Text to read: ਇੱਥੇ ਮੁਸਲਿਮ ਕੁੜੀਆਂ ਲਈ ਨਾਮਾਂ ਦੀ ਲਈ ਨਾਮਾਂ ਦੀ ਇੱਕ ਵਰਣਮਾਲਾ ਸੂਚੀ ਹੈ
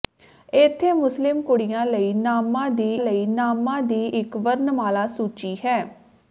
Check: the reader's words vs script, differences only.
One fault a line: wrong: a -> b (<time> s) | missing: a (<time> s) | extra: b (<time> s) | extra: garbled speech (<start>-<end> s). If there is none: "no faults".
no faults